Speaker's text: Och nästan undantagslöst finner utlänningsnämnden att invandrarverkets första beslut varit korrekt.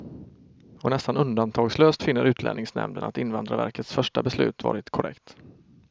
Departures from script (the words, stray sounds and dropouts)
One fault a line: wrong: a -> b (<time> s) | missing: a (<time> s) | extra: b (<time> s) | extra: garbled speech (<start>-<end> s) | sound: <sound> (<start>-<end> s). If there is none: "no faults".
no faults